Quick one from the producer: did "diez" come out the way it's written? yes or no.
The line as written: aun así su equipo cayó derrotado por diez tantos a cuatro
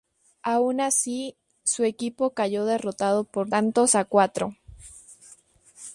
no